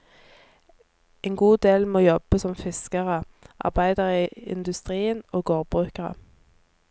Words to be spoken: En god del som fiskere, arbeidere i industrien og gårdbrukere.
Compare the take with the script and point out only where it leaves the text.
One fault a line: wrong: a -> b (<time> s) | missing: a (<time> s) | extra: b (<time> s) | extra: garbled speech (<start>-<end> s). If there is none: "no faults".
extra: må jobbe (1.9 s)